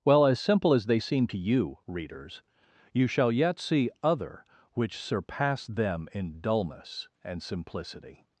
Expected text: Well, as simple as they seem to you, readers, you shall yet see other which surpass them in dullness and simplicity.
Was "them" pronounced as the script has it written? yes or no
yes